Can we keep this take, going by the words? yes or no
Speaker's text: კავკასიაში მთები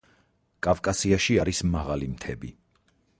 no